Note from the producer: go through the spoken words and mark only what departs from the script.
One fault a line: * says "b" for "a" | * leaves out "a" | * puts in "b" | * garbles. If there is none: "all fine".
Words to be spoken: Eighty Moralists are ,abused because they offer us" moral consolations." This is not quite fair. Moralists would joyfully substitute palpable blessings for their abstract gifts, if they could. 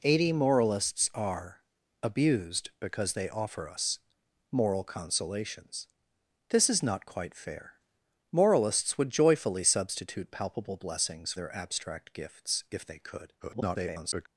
* leaves out "for"
* garbles